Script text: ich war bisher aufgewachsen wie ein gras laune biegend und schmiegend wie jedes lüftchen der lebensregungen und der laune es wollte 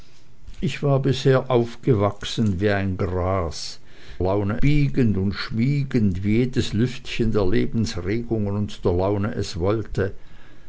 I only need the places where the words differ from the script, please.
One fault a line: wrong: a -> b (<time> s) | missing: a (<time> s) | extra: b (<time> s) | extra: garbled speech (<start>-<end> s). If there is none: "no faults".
no faults